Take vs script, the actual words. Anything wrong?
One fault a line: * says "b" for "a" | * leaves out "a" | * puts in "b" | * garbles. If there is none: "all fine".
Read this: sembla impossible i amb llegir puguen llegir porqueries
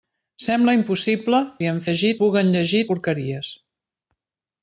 all fine